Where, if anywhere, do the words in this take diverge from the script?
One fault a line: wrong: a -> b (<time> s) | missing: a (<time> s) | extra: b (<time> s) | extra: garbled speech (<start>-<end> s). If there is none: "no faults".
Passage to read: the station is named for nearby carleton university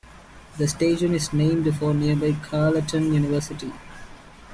no faults